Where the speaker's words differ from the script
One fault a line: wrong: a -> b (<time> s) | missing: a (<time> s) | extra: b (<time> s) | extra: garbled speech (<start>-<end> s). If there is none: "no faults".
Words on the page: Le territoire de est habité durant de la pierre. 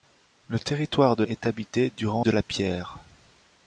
no faults